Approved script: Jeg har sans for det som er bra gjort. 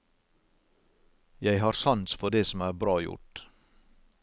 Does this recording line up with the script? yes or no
yes